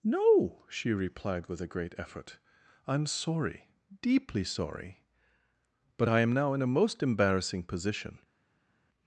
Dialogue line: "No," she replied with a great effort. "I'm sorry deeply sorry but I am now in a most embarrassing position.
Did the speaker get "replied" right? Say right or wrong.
right